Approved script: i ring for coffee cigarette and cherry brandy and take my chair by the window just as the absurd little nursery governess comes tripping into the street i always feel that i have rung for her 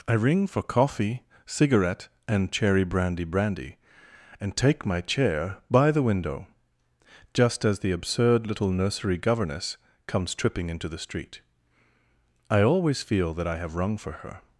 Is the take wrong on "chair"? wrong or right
right